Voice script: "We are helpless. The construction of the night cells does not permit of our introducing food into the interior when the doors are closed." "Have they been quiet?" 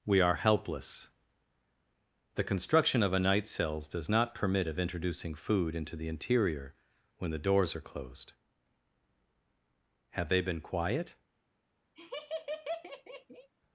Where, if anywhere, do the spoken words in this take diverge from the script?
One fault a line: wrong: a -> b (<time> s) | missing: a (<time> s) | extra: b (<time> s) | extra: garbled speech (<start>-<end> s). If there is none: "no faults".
wrong: the -> a (3.1 s)
missing: our (4.8 s)